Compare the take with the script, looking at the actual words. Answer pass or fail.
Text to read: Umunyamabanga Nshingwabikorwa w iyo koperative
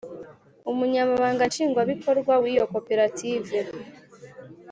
pass